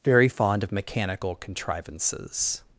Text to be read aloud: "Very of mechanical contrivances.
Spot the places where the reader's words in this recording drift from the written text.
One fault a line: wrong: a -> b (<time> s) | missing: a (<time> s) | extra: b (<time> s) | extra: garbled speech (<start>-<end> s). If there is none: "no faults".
extra: fond (0.3 s)